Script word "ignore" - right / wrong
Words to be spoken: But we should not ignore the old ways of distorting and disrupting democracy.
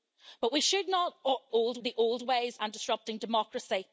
wrong